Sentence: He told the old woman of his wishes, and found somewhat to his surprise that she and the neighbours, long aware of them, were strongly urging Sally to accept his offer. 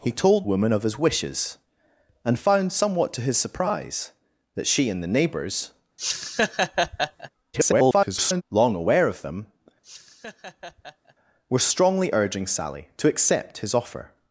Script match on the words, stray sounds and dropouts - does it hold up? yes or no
no